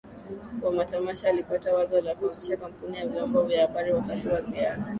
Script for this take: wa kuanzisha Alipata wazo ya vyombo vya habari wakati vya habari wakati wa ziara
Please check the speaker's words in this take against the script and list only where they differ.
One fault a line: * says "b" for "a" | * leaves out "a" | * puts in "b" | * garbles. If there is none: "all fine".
* says "matamasha" for "kuanzisha"
* says "la kuanzisha kampuni ya vyombo" for "ya vyombo vya habari wakati"